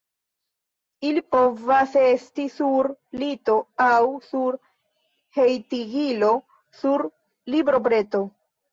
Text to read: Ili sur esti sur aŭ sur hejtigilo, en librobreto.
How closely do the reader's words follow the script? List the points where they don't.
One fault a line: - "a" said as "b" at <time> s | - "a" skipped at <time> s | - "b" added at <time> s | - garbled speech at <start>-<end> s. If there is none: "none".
- "sur" said as "povas" at 1.4 s
- "lito" added at 3.2 s
- "en" said as "sur" at 6.8 s